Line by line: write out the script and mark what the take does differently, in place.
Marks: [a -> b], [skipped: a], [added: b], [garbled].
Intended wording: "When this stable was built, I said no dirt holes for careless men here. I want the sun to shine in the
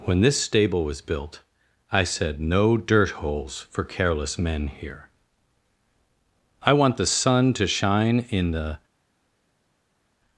"When this stable was built, I said no dirt holes for careless men here. I want the sun to shine in the